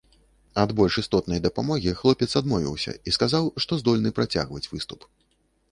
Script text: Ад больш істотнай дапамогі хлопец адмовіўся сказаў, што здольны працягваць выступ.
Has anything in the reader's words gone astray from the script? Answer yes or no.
yes